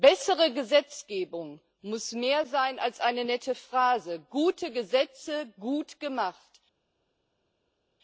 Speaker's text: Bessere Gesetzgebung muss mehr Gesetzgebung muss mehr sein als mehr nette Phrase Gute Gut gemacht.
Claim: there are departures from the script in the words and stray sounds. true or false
true